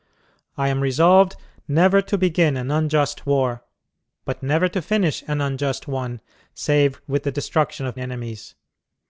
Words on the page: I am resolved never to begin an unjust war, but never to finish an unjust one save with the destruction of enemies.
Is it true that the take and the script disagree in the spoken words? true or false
false